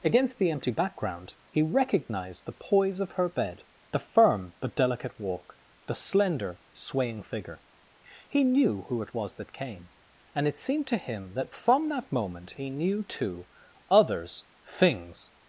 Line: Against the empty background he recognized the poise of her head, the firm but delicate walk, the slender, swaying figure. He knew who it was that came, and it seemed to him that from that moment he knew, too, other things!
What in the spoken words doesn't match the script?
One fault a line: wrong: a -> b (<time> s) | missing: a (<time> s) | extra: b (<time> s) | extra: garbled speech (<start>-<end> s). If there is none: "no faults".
wrong: head -> bed (3.3 s)
wrong: other -> others (13.9 s)